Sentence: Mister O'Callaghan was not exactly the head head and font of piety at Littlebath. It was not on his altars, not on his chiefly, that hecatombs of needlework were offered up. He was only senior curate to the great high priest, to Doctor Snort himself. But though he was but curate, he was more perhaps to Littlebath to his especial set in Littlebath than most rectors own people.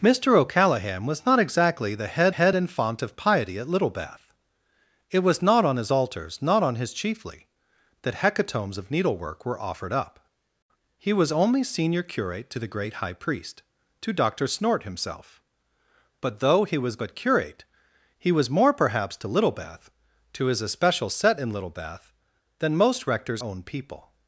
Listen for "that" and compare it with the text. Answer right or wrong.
right